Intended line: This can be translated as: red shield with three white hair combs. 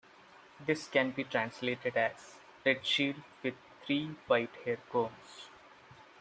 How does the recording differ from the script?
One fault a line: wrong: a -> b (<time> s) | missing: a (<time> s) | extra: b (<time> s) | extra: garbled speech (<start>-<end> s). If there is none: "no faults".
no faults